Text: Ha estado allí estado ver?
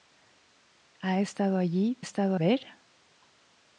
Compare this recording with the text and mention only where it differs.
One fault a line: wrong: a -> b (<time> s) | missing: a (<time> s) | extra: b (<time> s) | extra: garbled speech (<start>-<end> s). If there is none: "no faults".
no faults